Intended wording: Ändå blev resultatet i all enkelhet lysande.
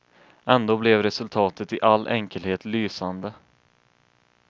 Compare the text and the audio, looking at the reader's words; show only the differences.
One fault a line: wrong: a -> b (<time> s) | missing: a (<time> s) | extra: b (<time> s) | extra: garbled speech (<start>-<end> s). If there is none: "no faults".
no faults